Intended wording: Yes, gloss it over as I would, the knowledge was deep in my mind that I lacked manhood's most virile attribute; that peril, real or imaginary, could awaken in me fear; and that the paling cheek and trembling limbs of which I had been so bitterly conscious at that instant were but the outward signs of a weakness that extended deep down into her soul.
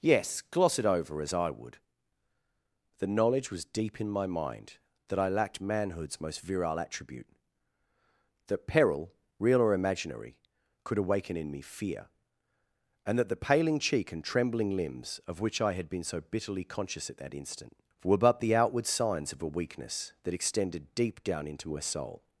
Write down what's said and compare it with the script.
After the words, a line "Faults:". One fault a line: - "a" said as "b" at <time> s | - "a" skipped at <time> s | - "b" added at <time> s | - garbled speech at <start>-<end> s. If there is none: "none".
Yes, gloss it over as I would, the knowledge was deep in my mind that I lacked manhood's most virile attribute; that peril, real or imaginary, could awaken in me fear; and that the paling cheek and trembling limbs of which I had been so bitterly conscious at that instant were but the outward signs of a weakness that extended deep down into her soul.
Faults:
none